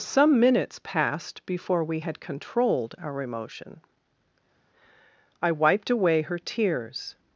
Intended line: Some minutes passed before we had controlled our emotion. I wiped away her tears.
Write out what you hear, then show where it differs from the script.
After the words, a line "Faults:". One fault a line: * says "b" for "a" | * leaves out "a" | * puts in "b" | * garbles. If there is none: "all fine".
Some minutes passed before we had controlled our emotion. I wiped away her tears.
Faults:
all fine